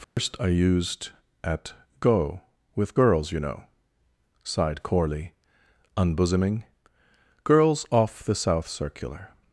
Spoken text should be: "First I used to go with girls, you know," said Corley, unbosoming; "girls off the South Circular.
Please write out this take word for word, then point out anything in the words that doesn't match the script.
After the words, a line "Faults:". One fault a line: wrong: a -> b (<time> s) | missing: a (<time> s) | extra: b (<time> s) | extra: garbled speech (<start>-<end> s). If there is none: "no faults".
"First I used at go with girls, you know," sighed Corley, unbosoming; "girls off the South Circular.
Faults:
wrong: to -> at (1.4 s)
wrong: said -> sighed (4.4 s)